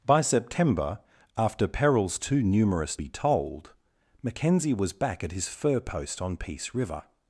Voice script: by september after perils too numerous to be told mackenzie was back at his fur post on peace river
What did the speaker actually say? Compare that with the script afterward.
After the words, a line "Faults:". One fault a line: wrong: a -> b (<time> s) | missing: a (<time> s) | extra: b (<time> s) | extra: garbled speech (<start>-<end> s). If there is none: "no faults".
by september after perils too numerous be told mackenzie was back at his fur post on peace river
Faults:
missing: to (3.0 s)